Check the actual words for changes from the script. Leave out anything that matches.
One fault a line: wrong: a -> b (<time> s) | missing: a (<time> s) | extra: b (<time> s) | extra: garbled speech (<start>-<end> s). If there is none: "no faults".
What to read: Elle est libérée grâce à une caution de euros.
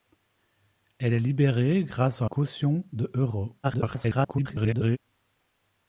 missing: une (2.2 s)
extra: garbled speech (3.6-5.0 s)